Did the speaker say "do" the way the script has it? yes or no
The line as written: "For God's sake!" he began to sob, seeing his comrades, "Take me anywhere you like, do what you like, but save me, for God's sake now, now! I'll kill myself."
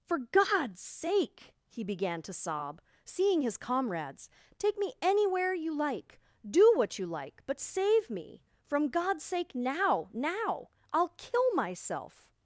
yes